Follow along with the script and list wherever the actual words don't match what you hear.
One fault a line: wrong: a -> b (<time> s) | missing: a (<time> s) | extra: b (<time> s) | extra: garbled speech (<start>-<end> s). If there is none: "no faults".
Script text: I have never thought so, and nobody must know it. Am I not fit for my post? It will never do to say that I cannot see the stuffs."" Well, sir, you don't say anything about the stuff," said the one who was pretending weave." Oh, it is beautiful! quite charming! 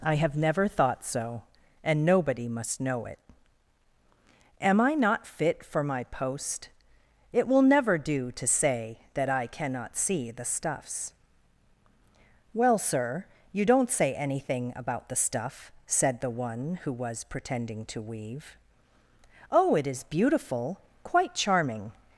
extra: to (17.9 s)